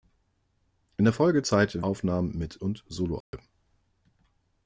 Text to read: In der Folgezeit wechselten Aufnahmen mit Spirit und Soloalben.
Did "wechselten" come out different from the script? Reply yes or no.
yes